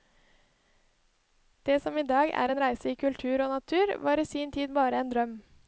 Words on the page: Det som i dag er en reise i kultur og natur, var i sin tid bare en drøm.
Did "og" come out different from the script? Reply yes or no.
no